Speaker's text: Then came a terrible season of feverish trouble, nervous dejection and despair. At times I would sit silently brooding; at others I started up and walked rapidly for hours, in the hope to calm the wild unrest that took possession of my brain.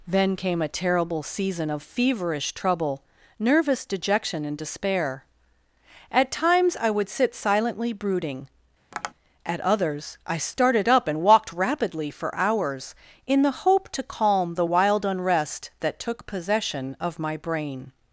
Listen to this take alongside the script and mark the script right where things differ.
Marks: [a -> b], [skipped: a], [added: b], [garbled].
Then came a terrible season of feverish trouble, nervous dejection and despair. At times I would sit silently brooding; at others I started up and walked rapidly for hours, in the hope to calm the wild unrest that took possession of my brain.